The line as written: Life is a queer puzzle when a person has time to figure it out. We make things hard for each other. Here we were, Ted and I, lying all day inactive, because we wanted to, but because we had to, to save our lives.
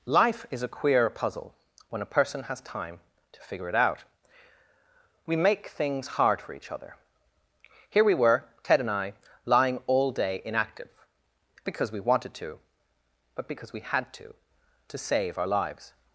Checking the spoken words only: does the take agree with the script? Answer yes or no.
yes